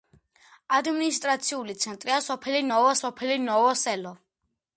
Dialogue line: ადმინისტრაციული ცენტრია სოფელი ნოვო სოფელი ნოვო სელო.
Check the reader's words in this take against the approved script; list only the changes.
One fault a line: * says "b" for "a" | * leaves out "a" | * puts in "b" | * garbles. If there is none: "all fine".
all fine